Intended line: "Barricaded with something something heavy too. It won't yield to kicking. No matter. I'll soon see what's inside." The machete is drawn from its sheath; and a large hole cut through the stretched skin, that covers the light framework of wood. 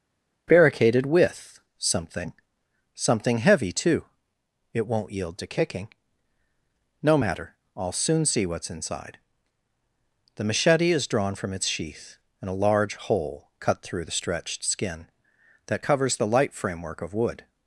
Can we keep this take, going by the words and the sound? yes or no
yes